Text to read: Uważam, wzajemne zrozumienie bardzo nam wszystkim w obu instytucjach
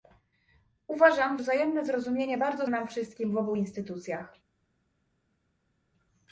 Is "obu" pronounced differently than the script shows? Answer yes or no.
no